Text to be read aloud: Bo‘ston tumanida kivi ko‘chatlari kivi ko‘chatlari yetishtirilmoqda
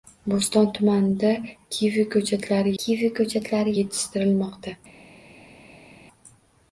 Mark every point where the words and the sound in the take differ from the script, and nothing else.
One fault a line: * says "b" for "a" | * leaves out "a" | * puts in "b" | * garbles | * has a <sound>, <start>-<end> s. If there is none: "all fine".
all fine